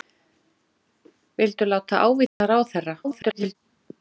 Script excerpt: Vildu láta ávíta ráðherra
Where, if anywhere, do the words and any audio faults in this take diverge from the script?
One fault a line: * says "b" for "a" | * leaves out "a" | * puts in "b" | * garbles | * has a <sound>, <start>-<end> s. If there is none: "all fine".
* has a dropout, 2.3-2.4 s
* garbles